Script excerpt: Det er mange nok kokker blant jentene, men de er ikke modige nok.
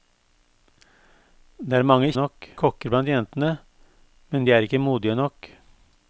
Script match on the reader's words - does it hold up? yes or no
yes